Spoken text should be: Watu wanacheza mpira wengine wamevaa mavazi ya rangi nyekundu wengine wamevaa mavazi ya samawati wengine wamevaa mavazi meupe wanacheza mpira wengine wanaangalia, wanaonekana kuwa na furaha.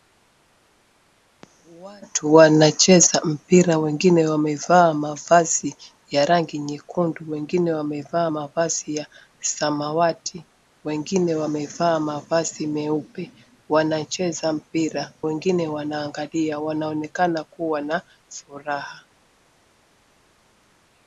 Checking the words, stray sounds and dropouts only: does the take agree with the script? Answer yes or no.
yes